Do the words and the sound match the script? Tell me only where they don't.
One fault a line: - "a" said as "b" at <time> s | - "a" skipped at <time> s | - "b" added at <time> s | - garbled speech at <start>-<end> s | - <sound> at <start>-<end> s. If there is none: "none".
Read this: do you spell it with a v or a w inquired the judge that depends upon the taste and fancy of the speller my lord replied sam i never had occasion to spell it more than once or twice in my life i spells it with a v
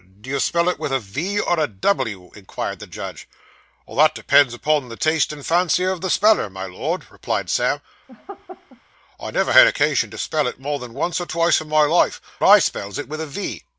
- laugh at 8.1-8.8 s